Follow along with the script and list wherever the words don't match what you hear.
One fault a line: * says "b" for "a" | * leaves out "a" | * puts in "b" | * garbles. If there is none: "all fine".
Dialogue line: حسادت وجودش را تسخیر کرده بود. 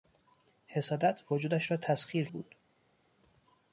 * leaves out "کرده"